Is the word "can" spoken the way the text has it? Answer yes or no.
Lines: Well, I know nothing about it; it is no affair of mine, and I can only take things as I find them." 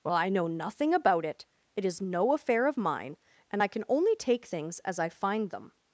yes